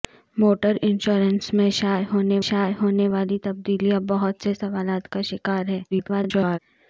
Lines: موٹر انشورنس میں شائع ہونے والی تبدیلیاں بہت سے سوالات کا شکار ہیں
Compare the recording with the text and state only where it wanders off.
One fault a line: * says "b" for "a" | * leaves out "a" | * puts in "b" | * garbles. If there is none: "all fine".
* puts in "شائع ہونے"
* garbles